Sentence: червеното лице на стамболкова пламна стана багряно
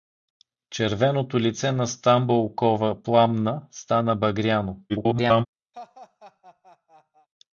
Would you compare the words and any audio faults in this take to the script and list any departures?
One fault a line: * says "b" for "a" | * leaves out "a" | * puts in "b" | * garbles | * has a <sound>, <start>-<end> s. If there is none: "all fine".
* garbles
* has a laugh, 5.7-7.3 s